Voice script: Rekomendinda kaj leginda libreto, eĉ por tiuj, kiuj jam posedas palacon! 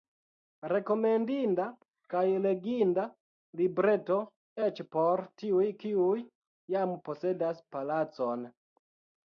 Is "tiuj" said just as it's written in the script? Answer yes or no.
yes